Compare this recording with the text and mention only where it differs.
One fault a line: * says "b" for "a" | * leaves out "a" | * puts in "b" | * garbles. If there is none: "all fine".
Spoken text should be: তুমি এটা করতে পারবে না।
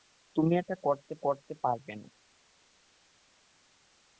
* puts in "করতে"